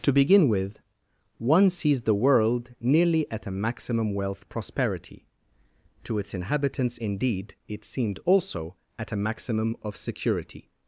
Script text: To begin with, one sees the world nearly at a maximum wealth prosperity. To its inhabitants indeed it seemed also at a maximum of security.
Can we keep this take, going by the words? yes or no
yes